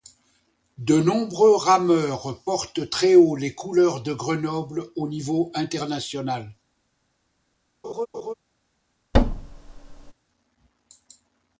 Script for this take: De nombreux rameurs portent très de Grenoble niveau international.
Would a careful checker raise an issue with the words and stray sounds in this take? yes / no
yes